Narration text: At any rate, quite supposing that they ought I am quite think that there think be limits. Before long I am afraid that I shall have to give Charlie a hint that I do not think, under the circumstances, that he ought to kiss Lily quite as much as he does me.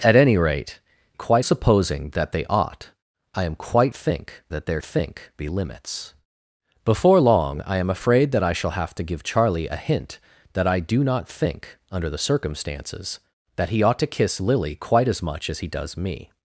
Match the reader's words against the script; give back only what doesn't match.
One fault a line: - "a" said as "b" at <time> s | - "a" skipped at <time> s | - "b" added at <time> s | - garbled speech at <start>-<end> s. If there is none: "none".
none